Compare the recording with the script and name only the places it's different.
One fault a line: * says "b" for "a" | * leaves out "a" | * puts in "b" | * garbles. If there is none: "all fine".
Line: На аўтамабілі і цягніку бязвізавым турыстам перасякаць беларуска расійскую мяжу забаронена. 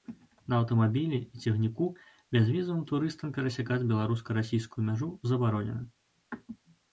all fine